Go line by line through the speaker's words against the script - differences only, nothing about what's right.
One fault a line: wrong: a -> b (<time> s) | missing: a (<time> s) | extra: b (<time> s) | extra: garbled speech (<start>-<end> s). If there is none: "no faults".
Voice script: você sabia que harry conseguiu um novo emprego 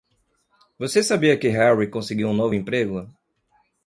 no faults